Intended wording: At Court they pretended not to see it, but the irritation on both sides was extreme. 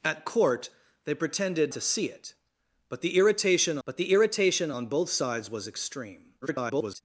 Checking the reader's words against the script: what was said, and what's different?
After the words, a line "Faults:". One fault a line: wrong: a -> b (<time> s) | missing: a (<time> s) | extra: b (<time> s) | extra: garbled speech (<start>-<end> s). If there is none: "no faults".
At Court they pretended to see it, but the irritation but the irritation on both sides was extreme. [garbled]
Faults:
missing: not (1.7 s)
extra: but the irritation (3.8 s)
extra: garbled speech (6.4-7.0 s)